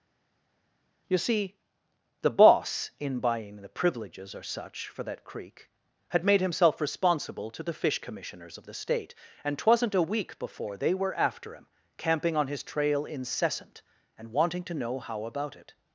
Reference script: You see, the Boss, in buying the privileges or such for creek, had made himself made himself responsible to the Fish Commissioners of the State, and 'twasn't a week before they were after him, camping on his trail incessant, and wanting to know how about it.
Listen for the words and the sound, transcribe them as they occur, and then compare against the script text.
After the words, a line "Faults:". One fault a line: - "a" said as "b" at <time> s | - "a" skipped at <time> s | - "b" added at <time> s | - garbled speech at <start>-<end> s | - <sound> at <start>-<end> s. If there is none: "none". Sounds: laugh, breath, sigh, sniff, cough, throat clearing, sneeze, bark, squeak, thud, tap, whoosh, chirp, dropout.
You see, the Boss, in buying the privileges or such for that creek, had made himself responsible to the Fish Commissioners of the State, and 'twasn't a week before they were after him, camping on his trail incessant, and wanting to know how about it.
Faults:
- "that" added at 5.0 s
- "made himself" skipped at 6.8 s